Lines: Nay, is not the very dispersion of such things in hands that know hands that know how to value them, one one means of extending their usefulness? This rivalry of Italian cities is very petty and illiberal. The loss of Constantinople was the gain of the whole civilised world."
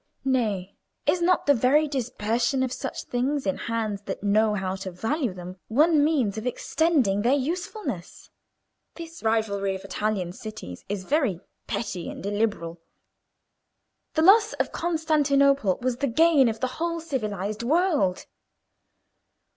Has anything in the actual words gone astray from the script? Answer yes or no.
yes